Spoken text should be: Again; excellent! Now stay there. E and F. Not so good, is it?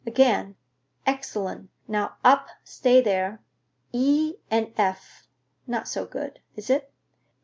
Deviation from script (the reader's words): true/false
true